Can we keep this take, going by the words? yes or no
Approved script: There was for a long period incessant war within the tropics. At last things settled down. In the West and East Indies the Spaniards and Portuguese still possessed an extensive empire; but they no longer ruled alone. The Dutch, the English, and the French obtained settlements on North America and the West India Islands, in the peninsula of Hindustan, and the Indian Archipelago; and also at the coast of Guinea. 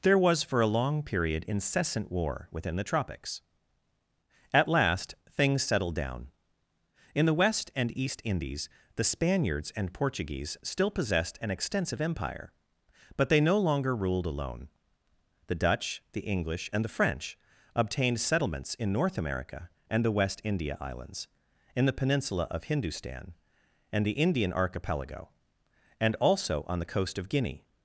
no